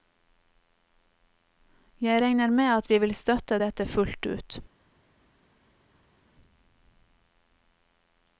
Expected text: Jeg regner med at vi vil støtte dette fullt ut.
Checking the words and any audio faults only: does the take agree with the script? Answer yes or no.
yes